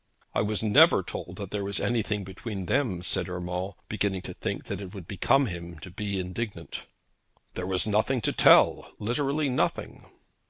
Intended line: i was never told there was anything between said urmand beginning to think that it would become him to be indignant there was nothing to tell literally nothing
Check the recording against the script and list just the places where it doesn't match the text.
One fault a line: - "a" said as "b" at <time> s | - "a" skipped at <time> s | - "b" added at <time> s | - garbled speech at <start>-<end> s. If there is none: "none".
- "that" added at 1.4 s
- "them" added at 2.6 s